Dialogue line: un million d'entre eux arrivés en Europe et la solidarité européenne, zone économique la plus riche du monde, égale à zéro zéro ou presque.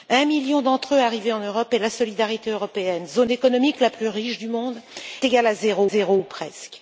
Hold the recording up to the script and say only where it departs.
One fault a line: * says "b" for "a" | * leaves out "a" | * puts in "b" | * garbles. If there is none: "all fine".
all fine